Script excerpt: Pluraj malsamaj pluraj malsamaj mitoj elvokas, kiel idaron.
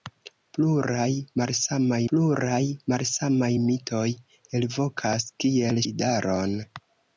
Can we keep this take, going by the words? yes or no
yes